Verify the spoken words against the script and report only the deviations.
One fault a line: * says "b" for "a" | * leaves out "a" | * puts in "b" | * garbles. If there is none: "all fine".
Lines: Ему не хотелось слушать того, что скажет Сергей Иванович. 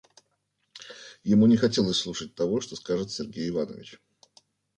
all fine